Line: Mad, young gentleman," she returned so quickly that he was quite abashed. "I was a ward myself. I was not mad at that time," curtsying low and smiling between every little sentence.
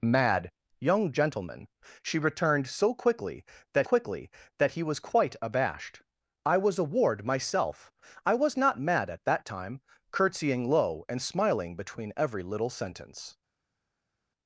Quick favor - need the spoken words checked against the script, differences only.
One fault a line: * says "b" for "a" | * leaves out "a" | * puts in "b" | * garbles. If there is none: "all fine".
* puts in "quickly that"